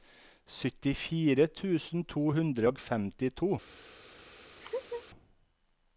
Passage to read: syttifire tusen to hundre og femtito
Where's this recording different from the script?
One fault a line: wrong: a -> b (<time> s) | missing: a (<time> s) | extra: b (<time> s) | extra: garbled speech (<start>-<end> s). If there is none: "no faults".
no faults